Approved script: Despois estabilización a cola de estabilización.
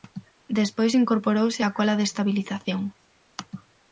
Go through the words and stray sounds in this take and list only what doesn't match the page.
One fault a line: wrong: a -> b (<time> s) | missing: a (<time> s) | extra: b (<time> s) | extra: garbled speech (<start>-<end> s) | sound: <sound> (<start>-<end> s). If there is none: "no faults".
wrong: estabilización -> incorporouse (1.0 s)